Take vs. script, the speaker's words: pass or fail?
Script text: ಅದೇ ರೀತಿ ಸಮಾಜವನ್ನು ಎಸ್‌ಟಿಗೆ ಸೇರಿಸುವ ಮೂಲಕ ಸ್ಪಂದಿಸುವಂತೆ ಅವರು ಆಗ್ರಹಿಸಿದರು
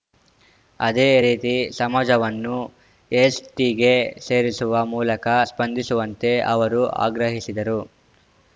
pass